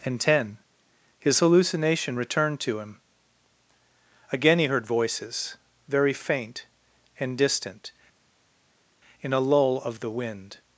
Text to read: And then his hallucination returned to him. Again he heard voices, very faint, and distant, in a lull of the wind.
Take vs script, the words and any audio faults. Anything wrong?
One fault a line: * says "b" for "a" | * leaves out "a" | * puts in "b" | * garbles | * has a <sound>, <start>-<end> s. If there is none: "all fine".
* says "ten" for "then"